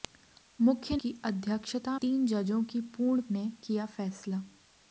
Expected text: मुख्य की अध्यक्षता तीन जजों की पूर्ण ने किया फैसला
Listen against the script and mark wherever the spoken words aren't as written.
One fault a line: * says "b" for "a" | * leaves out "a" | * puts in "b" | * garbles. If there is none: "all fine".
all fine